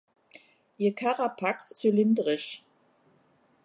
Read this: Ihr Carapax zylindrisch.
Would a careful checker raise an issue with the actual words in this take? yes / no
no